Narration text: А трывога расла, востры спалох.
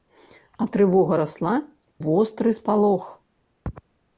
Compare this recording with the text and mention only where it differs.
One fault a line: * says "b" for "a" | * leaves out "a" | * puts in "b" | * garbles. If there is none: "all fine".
all fine